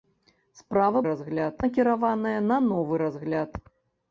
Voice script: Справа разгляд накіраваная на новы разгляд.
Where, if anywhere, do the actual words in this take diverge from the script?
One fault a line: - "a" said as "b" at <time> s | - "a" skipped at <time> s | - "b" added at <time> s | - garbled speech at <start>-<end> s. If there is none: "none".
none